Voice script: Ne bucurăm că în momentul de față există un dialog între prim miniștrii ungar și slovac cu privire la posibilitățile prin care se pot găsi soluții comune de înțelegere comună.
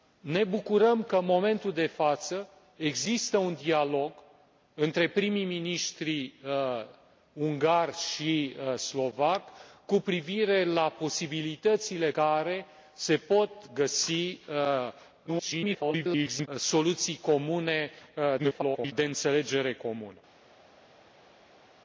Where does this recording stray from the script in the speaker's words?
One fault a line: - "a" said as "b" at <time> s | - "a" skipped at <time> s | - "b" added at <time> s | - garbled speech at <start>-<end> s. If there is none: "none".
- "prin" skipped at 12.1 s
- garbled speech at 15.3-16.5 s
- garbled speech at 18.4-18.9 s